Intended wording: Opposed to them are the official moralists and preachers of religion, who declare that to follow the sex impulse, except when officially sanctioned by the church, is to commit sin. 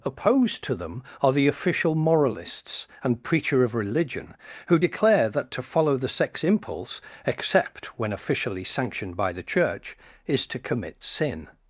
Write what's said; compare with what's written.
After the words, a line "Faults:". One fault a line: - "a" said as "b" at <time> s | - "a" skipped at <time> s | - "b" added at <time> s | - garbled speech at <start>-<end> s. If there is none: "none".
Opposed to them are the official moralists and preacher of religion, who declare that to follow the sex impulse, except when officially sanctioned by the church, is to commit sin.
Faults:
- "preachers" said as "preacher" at 3.2 s